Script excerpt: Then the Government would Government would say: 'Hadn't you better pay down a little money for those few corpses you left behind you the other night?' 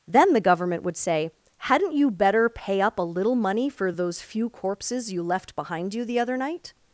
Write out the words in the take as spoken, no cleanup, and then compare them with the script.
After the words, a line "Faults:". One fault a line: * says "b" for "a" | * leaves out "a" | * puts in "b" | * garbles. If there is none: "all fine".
Then the Government would say: 'Hadn't you better pay up a little money for those few corpses you left behind you the other night?'
Faults:
* leaves out "Government would"
* says "up" for "down"